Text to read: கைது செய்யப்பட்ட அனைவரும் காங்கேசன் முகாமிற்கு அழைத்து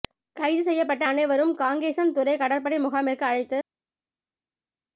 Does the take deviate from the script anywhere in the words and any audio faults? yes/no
yes